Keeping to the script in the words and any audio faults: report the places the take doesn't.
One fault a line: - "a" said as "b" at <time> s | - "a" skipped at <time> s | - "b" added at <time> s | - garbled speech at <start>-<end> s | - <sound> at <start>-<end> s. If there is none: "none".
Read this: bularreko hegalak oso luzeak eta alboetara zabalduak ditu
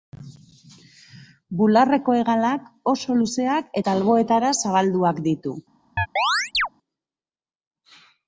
- chirp at 6.0-6.7 s